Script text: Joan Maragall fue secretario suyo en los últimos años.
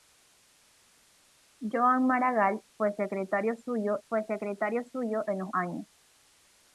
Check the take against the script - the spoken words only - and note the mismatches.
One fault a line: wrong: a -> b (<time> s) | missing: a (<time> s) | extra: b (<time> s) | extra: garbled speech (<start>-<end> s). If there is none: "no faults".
extra: fue secretario suyo (4.1 s)
missing: últimos (5.5 s)